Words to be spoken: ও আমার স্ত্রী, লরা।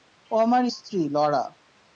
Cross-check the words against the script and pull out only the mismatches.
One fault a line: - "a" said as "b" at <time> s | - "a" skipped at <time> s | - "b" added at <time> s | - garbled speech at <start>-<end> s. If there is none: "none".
none